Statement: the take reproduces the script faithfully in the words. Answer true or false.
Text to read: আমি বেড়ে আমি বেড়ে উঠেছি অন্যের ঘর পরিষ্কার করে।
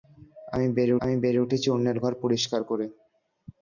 true